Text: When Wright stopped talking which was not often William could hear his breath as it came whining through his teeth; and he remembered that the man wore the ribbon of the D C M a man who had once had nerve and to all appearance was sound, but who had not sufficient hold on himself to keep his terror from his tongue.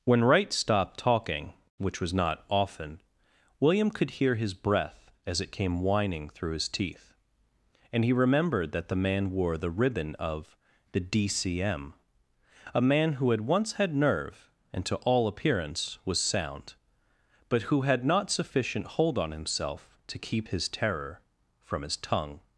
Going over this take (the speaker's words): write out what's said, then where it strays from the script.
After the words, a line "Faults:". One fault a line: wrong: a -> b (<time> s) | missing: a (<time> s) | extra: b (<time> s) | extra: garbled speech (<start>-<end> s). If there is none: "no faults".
When Wright stopped talking which was not often William could hear his breath as it came whining through his teeth; and he remembered that the man wore the ribbon of the D C M a man who had once had nerve and to all appearance was sound, but who had not sufficient hold on himself to keep his terror from his tongue.
Faults:
no faults